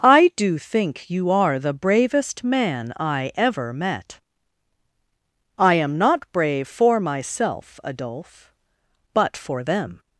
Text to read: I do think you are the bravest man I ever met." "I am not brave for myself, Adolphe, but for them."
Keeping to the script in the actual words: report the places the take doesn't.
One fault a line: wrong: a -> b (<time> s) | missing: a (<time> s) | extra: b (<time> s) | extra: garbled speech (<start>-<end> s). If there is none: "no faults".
no faults